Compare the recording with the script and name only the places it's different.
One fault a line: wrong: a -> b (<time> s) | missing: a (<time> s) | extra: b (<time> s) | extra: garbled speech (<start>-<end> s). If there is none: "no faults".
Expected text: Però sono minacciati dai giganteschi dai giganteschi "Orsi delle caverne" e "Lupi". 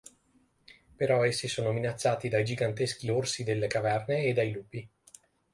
extra: essi (1.2 s)
missing: dai giganteschi (3.1 s)
extra: dai (4.3 s)